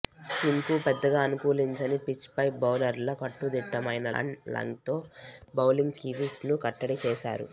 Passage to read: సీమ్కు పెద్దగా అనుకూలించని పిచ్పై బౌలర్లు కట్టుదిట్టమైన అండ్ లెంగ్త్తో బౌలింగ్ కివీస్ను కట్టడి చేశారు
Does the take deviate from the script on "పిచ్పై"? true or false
false